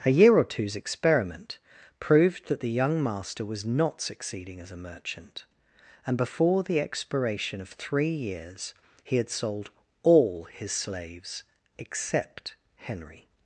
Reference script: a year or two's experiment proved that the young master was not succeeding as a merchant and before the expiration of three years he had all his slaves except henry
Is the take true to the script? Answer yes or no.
no